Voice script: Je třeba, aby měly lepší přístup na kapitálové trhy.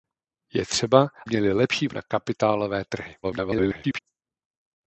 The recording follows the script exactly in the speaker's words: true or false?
false